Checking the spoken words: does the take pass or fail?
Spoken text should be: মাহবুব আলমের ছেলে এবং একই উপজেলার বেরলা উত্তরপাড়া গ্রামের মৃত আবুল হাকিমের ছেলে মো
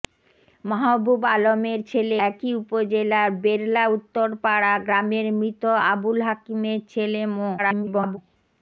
fail